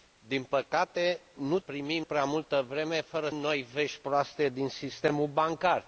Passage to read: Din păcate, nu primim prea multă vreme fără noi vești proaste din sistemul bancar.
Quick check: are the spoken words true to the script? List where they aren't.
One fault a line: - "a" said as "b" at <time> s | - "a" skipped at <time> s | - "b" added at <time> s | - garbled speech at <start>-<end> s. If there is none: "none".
none